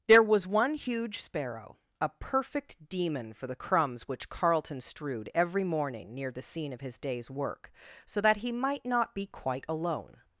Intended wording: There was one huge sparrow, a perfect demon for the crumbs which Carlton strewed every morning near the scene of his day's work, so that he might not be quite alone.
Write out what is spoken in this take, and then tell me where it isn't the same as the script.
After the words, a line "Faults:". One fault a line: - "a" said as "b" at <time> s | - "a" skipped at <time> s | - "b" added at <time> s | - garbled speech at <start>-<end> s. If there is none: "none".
There was one huge sparrow, a perfect demon for the crumbs which Carlton strewed every morning near the scene of his day's work, so that he might not be quite alone.
Faults:
none